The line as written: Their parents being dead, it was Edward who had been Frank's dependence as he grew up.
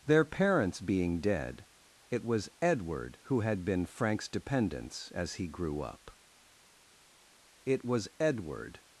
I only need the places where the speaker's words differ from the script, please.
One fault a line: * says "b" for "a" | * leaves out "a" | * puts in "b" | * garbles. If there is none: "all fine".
* puts in "It was Edward"